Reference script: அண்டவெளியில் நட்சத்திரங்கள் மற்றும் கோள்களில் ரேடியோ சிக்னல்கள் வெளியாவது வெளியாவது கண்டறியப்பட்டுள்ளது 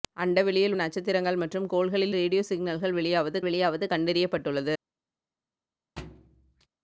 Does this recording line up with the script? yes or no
yes